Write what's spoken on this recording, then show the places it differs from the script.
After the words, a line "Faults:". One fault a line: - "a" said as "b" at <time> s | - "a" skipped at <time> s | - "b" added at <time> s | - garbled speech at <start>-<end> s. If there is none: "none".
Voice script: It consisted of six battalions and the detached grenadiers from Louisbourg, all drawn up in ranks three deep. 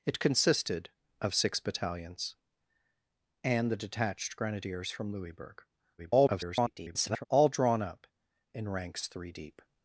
It consisted of six battalions and the detached grenadiers from Louisbourg, [garbled] all drawn up in ranks three deep.
Faults:
- garbled speech at 6.0-7.3 s